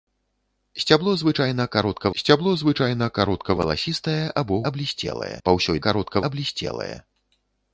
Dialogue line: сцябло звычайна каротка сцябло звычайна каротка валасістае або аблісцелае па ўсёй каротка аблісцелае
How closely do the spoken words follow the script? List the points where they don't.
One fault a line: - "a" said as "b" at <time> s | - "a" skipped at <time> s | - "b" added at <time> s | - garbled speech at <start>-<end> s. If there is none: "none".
none